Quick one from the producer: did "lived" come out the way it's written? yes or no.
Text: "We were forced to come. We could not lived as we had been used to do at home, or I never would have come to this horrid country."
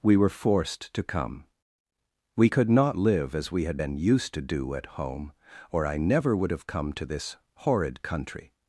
no